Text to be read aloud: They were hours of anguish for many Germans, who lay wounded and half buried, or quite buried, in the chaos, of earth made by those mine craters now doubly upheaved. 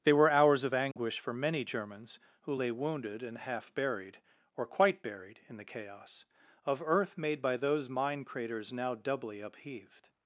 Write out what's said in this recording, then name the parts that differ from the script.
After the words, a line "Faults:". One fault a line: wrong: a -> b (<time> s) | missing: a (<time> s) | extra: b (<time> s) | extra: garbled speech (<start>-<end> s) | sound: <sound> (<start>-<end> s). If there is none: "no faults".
They were hours of anguish for many Germans, who lay wounded and half buried, or quite buried, in the chaos, of earth made by those mine craters now doubly upheaved.
Faults:
sound: dropout (0.9-1.0 s)